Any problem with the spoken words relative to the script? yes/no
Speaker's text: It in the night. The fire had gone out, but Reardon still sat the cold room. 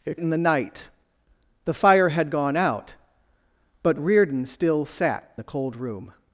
no